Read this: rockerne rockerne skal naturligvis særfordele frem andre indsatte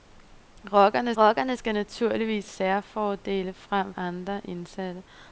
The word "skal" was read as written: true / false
true